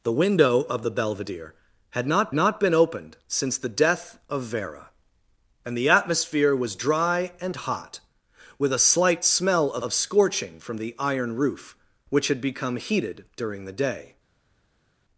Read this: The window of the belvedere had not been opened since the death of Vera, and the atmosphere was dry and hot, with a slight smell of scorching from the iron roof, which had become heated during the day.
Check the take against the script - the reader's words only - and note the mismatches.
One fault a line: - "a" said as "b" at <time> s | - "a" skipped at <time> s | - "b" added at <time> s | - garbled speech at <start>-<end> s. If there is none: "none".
- "not" added at 2.3 s
- "of" added at 9.8 s